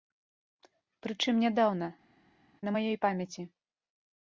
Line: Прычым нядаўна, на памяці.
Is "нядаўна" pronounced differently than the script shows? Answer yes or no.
no